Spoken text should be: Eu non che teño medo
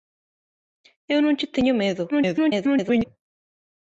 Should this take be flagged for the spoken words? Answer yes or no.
yes